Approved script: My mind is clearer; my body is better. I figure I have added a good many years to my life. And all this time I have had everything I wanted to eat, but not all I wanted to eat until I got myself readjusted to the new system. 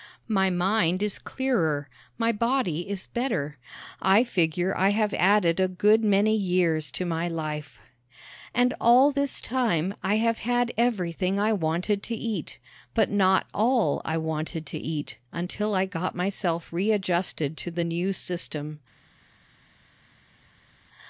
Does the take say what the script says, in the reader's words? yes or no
yes